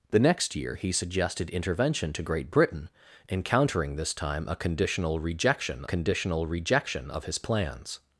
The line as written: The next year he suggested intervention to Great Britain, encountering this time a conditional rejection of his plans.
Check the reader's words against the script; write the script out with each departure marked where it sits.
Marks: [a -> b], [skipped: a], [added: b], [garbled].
The next year he suggested intervention to Great Britain, encountering this time a conditional rejection [added: conditional rejection] of his plans.